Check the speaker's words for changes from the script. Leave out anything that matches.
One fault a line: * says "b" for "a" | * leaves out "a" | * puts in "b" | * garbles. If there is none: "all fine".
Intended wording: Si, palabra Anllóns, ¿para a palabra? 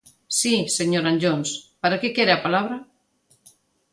* says "señor" for "palabra"
* puts in "que quere"